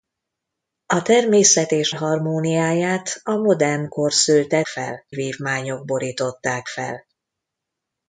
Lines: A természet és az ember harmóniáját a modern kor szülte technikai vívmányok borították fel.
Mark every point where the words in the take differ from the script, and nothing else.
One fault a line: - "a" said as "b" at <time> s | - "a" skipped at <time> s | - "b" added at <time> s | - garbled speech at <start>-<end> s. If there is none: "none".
- "az ember" skipped at 1.9 s
- "technikai" said as "fel" at 4.7 s